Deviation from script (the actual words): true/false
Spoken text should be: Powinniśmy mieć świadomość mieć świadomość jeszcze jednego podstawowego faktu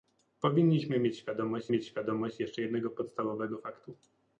false